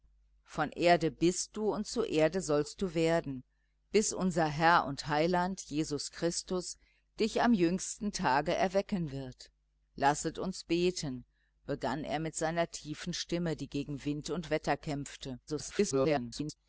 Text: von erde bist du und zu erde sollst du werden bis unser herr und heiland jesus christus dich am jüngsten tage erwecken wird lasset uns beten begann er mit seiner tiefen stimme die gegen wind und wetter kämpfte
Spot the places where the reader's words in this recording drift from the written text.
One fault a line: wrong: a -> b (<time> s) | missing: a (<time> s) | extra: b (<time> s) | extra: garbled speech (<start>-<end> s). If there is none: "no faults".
extra: garbled speech (15.5-16.6 s)